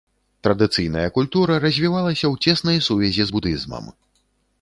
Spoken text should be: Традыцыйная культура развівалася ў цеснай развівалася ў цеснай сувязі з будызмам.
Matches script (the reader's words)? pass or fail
fail